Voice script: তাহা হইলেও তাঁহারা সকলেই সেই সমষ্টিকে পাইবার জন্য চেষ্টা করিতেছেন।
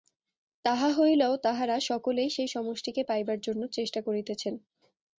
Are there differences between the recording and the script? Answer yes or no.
no